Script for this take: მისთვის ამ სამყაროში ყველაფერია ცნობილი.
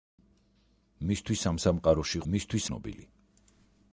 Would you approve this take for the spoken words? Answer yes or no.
no